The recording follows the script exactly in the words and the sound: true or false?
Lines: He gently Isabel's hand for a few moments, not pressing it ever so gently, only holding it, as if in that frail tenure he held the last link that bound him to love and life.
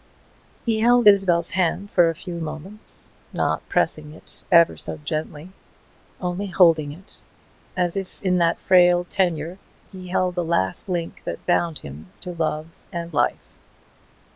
false